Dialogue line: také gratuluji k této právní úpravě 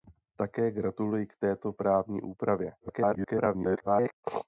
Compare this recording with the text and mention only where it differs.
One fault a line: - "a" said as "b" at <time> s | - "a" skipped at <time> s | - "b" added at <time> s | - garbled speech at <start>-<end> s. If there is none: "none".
- garbled speech at 2.8-4.1 s